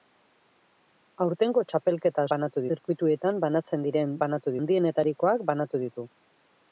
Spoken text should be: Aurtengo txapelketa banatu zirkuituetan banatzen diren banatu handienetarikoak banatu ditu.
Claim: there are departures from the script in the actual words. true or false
false